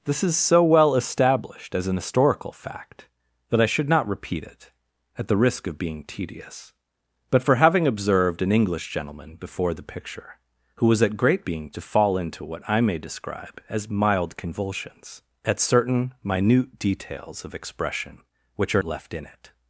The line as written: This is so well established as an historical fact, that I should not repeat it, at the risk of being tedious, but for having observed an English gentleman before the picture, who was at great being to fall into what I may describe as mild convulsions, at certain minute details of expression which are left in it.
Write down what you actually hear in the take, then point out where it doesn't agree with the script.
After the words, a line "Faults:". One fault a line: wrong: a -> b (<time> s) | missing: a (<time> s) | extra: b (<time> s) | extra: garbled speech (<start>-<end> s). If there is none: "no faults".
This is so well established as an historical fact, that I should not repeat it, at the risk of being tedious, but for having observed an English gentleman before the picture, who was at great being to fall into what I may describe as mild convulsions, at certain minute details of expression which are left in it.
Faults:
no faults